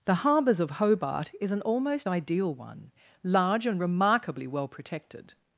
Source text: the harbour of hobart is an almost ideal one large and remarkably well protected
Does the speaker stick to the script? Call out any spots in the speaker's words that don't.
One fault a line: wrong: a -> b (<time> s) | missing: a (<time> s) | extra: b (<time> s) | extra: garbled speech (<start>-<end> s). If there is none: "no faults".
wrong: harbour -> harbours (0.1 s)